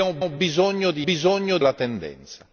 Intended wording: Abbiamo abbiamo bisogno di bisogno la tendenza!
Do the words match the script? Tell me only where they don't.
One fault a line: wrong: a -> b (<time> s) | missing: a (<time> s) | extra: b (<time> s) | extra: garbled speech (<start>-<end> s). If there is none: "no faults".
no faults